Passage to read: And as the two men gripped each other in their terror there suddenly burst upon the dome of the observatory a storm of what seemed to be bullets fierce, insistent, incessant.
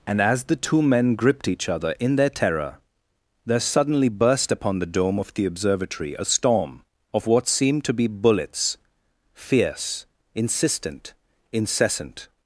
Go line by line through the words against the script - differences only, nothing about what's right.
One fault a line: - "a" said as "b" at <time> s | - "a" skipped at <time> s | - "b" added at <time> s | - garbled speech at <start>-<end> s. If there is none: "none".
none